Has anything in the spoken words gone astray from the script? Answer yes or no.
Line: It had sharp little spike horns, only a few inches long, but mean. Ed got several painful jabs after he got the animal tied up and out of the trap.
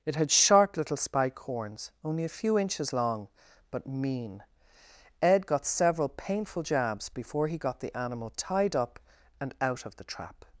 yes